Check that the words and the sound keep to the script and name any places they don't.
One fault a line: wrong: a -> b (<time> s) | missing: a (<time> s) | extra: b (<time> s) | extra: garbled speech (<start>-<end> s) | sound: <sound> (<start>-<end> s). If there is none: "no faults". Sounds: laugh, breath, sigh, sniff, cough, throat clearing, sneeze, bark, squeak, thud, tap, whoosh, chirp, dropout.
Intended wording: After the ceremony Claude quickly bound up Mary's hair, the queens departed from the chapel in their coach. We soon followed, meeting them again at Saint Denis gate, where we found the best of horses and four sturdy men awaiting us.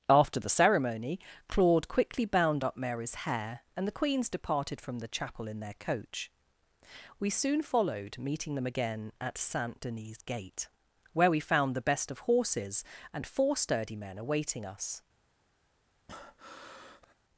extra: and (3.7 s)
sound: breath (16.1-17.1 s)